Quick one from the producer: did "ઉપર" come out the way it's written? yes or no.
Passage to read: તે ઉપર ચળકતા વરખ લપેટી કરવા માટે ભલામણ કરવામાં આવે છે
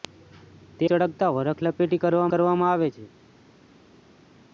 no